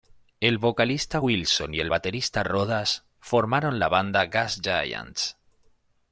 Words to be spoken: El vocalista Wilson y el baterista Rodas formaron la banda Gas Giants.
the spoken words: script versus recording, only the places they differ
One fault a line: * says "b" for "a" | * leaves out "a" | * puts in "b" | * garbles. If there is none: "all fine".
all fine